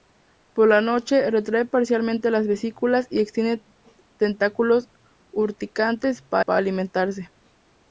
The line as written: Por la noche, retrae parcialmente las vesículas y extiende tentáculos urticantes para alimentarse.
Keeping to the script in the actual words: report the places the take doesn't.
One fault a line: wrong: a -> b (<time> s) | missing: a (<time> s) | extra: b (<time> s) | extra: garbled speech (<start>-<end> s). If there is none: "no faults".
extra: para (6.4 s)